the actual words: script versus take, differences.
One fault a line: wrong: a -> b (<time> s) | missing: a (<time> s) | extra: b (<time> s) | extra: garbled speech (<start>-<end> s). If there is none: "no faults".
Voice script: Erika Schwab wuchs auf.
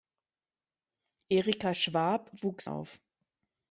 no faults